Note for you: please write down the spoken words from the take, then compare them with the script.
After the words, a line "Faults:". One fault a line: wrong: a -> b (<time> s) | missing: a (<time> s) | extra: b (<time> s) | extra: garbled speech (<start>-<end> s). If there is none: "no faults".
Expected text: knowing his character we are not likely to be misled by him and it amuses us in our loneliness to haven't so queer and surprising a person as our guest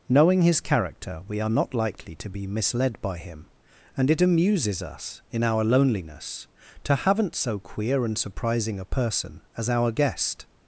knowing his character we are not likely to be misled by him and it amuses us in our loneliness to haven't so queer and surprising a person as our guest
Faults:
no faults